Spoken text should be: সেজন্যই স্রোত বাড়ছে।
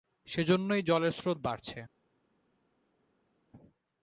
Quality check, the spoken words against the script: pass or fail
fail